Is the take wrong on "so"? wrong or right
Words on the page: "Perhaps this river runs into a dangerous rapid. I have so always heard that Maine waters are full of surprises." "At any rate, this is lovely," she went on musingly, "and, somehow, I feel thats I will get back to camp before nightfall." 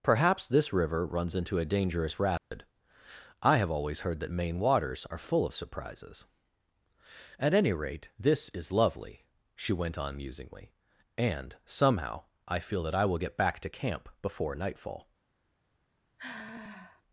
wrong